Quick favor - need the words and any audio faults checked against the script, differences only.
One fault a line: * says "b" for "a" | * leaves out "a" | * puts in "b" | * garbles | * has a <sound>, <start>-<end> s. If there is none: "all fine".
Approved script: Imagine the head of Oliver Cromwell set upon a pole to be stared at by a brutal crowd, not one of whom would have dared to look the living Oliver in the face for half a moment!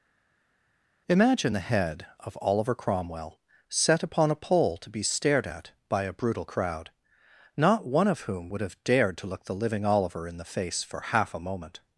all fine